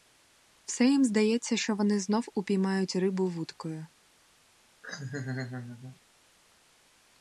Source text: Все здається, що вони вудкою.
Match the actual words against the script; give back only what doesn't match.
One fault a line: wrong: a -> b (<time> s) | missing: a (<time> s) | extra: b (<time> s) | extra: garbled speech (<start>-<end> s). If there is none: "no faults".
extra: їм (0.8 s)
extra: знов упіймають рибу (2.0 s)